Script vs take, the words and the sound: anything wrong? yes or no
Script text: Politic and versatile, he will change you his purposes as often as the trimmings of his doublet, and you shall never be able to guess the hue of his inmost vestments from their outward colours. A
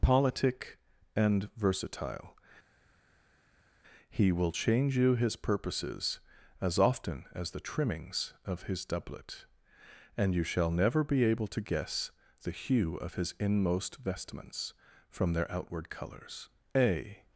no